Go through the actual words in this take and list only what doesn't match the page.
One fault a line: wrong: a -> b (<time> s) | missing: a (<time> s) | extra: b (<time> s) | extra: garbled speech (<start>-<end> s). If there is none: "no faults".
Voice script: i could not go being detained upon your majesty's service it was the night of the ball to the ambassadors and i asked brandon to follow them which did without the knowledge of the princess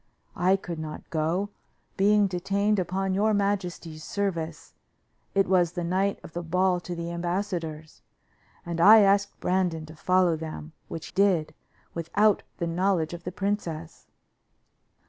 no faults